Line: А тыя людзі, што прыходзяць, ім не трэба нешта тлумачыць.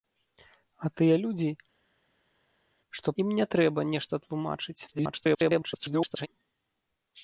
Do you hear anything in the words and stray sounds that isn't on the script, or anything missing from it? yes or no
yes